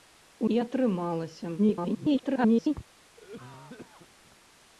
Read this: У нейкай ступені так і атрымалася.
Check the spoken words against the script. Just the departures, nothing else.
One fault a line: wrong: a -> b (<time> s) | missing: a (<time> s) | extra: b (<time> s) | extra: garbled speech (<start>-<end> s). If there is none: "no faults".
missing: нейкай ступені так (0.5 s)
extra: garbled speech (1.6-2.7 s)